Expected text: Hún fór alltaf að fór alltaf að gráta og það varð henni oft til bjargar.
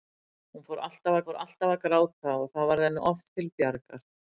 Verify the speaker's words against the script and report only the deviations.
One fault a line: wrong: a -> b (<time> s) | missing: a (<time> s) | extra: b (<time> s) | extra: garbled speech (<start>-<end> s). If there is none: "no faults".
no faults